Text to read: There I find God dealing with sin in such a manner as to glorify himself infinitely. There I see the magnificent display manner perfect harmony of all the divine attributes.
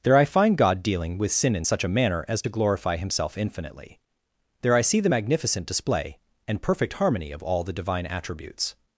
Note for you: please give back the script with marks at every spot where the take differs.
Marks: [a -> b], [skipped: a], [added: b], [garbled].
There I find God dealing with sin in such a manner as to glorify himself infinitely. There I see the magnificent display [manner -> and] perfect harmony of all the divine attributes.